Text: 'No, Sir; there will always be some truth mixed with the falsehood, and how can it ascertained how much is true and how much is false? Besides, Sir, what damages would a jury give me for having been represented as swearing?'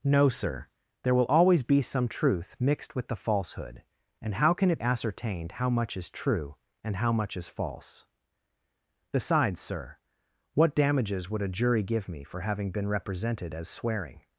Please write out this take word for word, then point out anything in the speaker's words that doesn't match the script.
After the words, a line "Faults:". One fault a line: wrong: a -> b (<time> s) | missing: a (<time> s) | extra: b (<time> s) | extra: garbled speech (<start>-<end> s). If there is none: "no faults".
'No, Sir; there will always be some truth mixed with the falsehood, and how can it ascertained how much is true and how much is false? Besides, Sir, what damages would a jury give me for having been represented as swearing?'
Faults:
no faults